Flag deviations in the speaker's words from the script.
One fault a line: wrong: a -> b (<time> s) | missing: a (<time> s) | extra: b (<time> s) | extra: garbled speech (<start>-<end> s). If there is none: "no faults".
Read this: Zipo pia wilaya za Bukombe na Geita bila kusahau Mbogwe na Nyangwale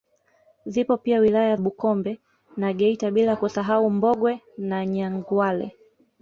missing: za (1.6 s)